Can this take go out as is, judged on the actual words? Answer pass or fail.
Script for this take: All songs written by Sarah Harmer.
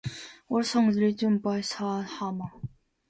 pass